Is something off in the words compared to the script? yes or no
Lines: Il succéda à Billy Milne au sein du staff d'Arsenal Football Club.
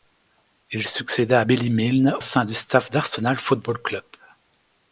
yes